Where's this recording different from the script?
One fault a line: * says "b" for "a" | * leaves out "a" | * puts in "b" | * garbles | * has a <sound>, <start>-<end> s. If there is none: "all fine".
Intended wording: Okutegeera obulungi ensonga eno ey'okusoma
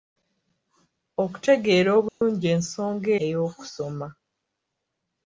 * has a dropout, 2.1-2.2 s
* leaves out "eno"